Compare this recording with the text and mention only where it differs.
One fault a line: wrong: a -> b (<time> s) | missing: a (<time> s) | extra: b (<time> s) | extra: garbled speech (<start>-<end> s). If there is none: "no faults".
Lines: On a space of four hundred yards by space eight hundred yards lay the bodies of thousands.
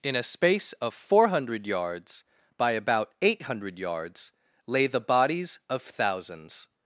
wrong: On -> In (0.0 s)
wrong: space -> about (2.7 s)